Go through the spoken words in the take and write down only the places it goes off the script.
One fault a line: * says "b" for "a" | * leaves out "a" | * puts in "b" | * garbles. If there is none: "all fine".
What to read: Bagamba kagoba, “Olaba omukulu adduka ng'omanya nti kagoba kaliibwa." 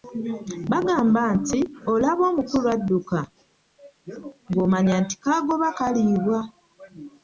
* says "nti" for "kagoba"